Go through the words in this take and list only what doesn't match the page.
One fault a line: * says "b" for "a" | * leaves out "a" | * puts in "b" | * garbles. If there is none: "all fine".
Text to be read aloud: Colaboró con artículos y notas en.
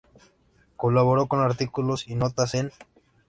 all fine